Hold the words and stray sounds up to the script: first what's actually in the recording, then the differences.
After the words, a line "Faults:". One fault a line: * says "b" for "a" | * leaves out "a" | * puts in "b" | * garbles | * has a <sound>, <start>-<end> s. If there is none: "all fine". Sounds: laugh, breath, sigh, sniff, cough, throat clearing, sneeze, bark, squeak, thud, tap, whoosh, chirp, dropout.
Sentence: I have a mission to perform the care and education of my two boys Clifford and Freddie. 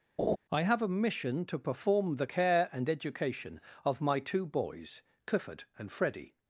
I have a mission to perform the care and education of my two boys Clifford and Freddie.
Faults:
* has a laugh, 0.2-0.4 s